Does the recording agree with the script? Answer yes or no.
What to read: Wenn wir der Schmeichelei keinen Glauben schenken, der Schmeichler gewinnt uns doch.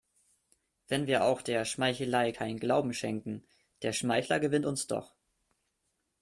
no